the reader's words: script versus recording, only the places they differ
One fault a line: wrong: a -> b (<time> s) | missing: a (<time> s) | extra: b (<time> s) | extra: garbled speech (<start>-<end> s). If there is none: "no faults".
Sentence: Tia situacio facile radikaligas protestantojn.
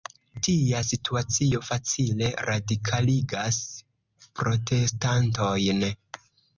no faults